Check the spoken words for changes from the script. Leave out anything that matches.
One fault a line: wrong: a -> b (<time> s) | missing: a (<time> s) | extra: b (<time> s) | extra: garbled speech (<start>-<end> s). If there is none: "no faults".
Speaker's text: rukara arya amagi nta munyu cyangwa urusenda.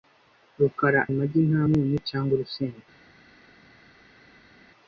missing: arya (1.0 s)